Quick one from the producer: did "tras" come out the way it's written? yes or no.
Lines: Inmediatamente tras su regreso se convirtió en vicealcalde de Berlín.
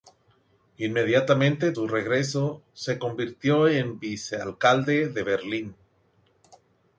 no